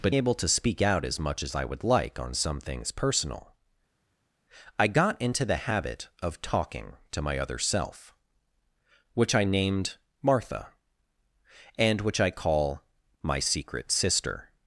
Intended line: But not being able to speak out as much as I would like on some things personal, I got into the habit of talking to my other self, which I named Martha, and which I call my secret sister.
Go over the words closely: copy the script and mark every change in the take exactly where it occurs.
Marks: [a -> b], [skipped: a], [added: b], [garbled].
But [skipped: not being] able to speak out as much as I would like on some things personal, I got into the habit of talking to my other self, which I named Martha, and which I call my secret sister.